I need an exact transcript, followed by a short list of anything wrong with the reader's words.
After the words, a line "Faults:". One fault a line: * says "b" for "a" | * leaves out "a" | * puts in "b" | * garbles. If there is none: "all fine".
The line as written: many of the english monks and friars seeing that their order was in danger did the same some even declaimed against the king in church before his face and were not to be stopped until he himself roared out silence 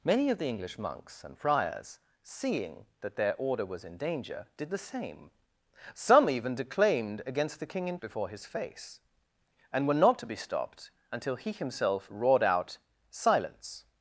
many of the english monks and friars seeing that their order was in danger did the same some even declaimed against the king in before his face and were not to be stopped until he himself roared out silence
Faults:
* leaves out "church"